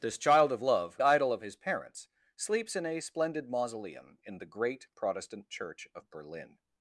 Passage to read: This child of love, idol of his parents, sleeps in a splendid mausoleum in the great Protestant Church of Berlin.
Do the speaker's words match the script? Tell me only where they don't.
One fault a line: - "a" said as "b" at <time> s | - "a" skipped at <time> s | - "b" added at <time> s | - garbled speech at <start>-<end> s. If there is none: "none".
none